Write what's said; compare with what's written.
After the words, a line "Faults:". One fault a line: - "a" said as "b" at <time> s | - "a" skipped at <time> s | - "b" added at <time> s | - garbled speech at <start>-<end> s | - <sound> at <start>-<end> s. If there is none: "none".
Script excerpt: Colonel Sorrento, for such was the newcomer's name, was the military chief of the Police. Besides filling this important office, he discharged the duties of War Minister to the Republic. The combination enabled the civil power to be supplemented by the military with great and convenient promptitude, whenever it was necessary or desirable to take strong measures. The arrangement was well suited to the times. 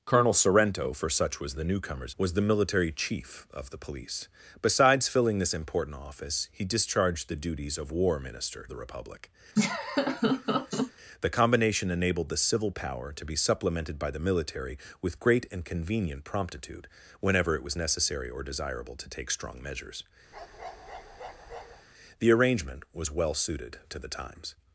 Colonel Sorrento, for such was the newcomer's was the military chief of the Police. Besides filling this important office, he discharged the duties of War Minister the Republic. The combination enabled the civil power to be supplemented by the military with great and convenient promptitude, whenever it was necessary or desirable to take strong measures. The arrangement was well suited to the times.
Faults:
- "name" skipped at 2.1 s
- "to" skipped at 8.7 s
- laugh at 9.6-10.9 s
- bark at 20.3-21.9 s